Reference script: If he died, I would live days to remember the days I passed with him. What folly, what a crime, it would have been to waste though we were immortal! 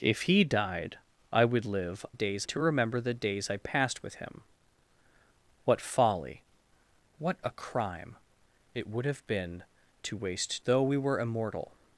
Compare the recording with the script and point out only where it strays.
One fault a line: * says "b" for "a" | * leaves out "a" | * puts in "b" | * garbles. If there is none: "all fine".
all fine